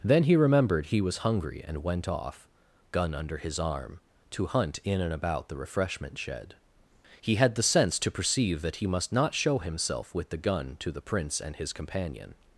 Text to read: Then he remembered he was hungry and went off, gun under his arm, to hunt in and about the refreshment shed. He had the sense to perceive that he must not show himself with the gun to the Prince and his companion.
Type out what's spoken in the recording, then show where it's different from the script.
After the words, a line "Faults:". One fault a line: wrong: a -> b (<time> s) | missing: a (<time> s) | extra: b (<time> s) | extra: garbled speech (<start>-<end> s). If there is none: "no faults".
Then he remembered he was hungry and went off, gun under his arm, to hunt in and about the refreshment shed. He had the sense to perceive that he must not show himself with the gun to the Prince and his companion.
Faults:
no faults